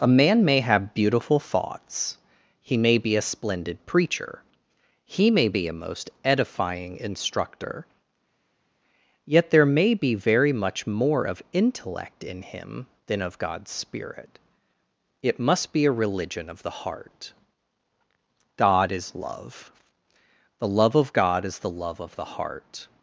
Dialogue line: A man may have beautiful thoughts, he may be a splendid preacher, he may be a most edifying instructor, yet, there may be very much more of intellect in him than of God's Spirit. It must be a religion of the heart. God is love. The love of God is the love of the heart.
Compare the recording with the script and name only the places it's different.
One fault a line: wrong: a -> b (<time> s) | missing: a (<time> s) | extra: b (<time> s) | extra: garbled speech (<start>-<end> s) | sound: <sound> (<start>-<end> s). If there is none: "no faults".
no faults